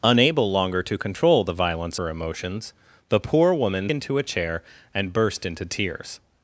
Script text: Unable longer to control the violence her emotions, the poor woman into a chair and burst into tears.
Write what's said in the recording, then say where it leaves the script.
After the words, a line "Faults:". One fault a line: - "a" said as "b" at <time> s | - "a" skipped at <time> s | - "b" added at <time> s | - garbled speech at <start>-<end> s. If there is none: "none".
Unable longer to control the violence her emotions, the poor woman into a chair and burst into tears.
Faults:
none